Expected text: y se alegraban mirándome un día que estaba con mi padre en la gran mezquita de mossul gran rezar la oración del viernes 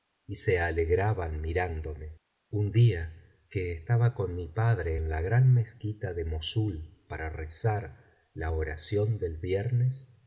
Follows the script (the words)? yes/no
no